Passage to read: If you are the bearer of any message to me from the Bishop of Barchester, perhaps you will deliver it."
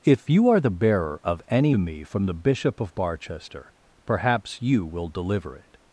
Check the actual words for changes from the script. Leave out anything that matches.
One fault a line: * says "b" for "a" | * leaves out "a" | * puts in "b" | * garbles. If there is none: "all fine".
* leaves out "message to"